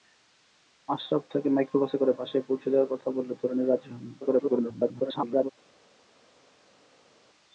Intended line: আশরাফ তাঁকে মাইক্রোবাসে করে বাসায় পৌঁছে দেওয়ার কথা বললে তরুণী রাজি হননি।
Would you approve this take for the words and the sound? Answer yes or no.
no